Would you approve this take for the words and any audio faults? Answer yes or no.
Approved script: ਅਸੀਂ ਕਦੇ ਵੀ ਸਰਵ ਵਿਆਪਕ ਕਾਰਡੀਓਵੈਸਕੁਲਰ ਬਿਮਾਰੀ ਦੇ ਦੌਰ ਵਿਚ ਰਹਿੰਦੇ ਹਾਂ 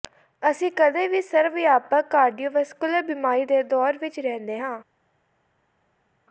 yes